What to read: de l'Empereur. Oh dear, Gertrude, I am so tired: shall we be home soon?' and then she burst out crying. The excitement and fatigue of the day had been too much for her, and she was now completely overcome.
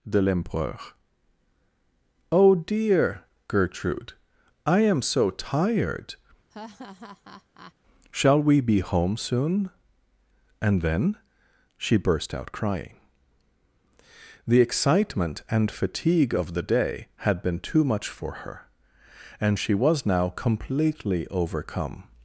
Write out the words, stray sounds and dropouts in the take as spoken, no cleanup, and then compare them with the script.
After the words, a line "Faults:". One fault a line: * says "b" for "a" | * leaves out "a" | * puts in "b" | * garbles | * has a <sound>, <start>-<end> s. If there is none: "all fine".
de l'Empereur. Oh dear, Gertrude, I am so tired: shall we be home soon?' and then she burst out crying. The excitement and fatigue of the day had been too much for her, and she was now completely overcome.
Faults:
* has a laugh, 6.5-7.7 s